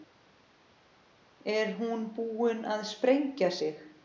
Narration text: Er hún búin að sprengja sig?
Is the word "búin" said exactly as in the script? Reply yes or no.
yes